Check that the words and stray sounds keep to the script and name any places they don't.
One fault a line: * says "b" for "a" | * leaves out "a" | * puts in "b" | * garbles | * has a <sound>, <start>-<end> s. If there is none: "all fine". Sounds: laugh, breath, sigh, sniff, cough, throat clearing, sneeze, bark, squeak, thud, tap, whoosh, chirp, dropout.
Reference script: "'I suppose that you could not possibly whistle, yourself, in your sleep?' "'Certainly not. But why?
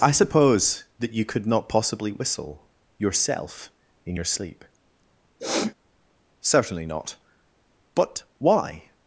* has a sniff, 5.4-5.7 s